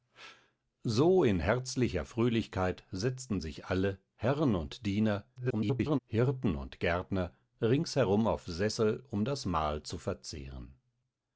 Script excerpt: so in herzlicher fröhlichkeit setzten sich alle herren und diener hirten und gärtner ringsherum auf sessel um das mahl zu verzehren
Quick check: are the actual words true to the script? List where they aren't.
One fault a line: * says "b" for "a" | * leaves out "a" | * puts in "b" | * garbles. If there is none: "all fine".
* garbles